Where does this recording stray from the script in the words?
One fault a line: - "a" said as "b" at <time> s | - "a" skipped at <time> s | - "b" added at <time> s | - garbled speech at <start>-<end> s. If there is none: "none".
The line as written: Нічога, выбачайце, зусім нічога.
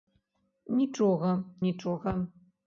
- "выбачайце зусім" skipped at 1.3 s